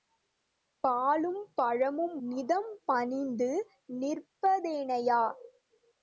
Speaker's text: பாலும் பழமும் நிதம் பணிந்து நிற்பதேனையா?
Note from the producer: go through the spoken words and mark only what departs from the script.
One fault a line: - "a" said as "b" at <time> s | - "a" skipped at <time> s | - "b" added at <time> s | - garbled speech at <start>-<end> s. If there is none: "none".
none